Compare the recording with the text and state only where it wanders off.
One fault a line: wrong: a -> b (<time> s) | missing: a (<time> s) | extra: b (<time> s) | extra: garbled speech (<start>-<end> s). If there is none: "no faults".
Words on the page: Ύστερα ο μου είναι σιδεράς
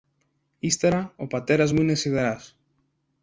extra: πατέρας (1.3 s)